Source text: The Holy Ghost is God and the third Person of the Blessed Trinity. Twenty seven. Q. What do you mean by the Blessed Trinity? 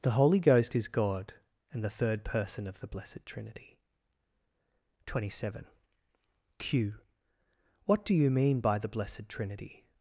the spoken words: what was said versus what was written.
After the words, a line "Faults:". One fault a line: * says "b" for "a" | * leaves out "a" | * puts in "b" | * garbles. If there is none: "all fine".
The Holy Ghost is God and the third Person of the Blessed Trinity. Twenty seven. Q. What do you mean by the Blessed Trinity?
Faults:
all fine